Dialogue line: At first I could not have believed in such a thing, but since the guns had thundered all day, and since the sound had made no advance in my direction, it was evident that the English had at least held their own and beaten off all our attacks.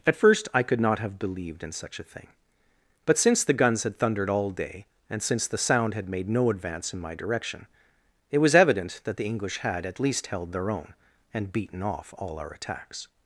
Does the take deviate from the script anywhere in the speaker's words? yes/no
no